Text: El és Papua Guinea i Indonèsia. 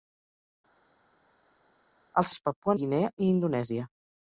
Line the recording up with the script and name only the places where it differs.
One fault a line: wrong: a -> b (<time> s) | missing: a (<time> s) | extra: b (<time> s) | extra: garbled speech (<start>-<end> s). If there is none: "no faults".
no faults